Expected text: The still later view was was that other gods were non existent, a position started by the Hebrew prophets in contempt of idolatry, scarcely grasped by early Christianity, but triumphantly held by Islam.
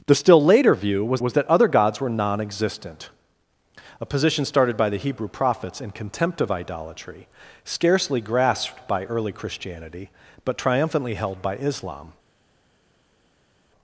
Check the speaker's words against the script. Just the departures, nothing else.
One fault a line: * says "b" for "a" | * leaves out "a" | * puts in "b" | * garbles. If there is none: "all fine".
all fine